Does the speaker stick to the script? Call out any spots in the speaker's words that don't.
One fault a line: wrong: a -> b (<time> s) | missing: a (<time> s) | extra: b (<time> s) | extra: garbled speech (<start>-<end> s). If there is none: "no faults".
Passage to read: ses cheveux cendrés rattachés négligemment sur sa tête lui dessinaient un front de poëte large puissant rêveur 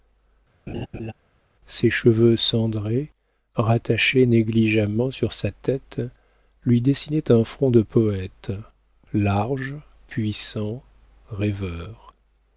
no faults